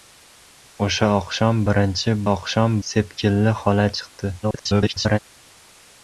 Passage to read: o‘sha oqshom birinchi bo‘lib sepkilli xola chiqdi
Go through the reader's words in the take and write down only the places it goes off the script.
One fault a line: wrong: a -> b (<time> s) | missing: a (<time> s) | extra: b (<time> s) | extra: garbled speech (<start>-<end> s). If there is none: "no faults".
wrong: bo‘lib -> oqshom (2.3 s)
extra: garbled speech (4.4-5.2 s)